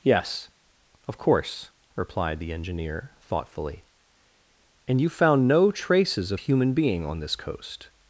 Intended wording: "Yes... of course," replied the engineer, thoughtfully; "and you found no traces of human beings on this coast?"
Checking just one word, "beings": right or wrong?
wrong